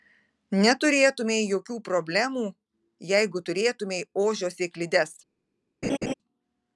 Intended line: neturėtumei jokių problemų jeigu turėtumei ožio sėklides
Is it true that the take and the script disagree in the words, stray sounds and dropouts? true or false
true